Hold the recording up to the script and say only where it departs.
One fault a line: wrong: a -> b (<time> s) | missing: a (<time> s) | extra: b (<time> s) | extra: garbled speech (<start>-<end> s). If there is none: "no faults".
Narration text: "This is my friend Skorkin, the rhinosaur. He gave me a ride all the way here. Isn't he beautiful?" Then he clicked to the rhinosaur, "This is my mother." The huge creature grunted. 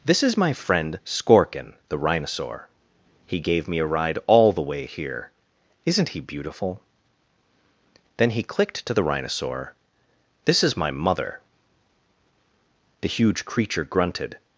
no faults